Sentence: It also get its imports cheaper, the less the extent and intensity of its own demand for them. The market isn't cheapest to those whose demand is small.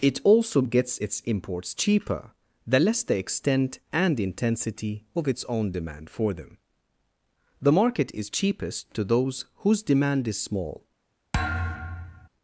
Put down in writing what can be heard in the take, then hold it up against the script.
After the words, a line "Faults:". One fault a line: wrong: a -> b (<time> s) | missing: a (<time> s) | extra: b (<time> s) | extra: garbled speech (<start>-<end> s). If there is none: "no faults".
It also gets its imports cheaper, the less the extent and intensity of its own demand for them. The market is cheapest to those whose demand is small.
Faults:
wrong: get -> gets (0.6 s)
wrong: isn't -> is (8.1 s)